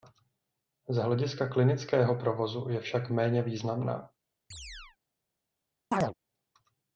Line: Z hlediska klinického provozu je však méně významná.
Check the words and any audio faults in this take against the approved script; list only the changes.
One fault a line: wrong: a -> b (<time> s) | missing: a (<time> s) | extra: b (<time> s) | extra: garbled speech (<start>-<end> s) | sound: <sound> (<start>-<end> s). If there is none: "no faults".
sound: chirp (4.5-5.0 s)
sound: chirp (5.9-6.1 s)